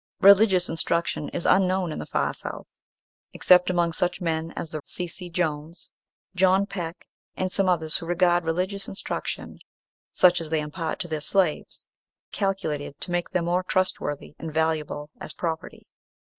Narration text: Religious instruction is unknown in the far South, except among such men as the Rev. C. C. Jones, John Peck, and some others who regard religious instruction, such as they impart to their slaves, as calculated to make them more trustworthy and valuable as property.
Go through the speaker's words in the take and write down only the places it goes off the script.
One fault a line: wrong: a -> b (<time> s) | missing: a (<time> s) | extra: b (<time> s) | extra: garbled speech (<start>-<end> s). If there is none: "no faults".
missing: Rev (4.8 s)
missing: as (11.9 s)